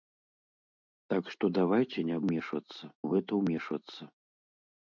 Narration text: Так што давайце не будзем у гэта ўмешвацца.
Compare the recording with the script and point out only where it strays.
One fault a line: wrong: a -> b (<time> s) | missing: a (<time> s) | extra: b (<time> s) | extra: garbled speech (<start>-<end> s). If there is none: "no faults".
wrong: будзем -> ўмешвацца (2.3 s)